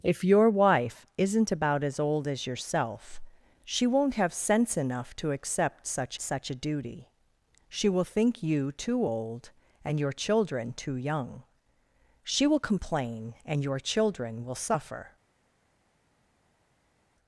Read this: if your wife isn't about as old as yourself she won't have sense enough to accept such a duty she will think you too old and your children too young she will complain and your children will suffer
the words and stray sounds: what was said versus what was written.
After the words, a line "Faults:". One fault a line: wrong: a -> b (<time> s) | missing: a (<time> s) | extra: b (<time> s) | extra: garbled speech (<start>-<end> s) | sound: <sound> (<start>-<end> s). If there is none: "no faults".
if your wife isn't about as old as yourself she won't have sense enough to accept such such a duty she will think you too old and your children too young she will complain and your children will suffer
Faults:
extra: such (6.2 s)